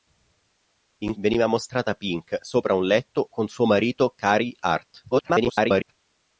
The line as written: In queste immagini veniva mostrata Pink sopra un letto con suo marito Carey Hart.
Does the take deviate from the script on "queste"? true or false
true